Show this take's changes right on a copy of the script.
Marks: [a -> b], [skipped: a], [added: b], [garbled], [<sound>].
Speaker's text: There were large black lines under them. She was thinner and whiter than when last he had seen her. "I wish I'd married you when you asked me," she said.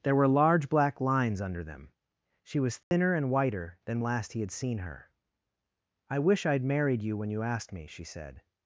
There were large black lines under them. She was thinner [dropout] and whiter than [skipped: when] last he had seen her. "I wish I'd married you when you asked me," she said.